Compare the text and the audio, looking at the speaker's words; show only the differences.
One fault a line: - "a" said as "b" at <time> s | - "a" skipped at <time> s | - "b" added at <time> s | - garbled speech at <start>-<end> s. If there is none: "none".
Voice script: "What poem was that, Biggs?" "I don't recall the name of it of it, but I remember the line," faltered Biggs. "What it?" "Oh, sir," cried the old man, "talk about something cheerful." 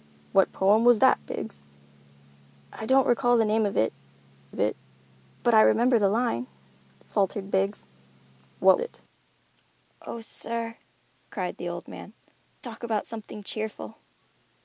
none